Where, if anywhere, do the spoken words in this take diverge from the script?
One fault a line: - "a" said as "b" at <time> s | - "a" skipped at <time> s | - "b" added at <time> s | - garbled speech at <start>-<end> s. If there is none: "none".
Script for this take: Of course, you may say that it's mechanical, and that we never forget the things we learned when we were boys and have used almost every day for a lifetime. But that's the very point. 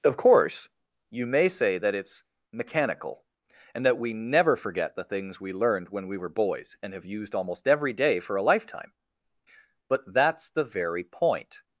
none